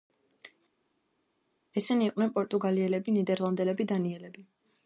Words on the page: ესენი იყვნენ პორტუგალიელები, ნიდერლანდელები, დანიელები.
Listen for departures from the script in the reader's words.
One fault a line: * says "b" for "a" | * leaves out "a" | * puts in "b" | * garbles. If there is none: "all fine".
all fine